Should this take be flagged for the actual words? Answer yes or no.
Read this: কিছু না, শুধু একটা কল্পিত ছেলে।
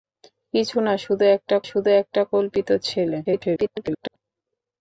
yes